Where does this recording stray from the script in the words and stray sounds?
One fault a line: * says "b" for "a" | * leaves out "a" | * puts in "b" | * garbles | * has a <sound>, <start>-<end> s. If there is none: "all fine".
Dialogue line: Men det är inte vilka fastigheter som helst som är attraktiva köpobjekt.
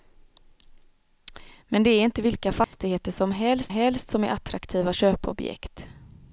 * has a dropout, 2.6-2.7 s
* puts in "helst"